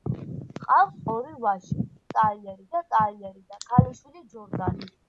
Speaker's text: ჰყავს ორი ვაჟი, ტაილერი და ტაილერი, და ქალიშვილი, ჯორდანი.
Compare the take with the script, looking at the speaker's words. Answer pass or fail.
pass